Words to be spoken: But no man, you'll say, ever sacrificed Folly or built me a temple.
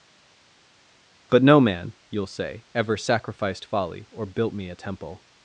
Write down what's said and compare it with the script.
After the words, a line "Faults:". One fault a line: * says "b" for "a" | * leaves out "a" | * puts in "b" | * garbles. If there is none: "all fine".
But no man, you'll say, ever sacrificed Folly or built me a temple.
Faults:
all fine